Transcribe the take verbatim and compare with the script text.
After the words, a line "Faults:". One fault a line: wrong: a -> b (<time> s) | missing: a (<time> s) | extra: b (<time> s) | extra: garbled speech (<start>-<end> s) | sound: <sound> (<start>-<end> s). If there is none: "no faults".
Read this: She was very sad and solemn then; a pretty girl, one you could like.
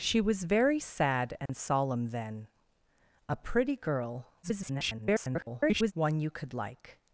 She was very sad and solemn then; a pretty girl, [garbled] one you could like.
Faults:
sound: dropout (1.5-1.5 s)
extra: garbled speech (4.4-5.9 s)